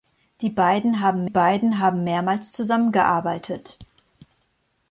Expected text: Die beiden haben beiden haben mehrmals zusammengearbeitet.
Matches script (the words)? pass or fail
pass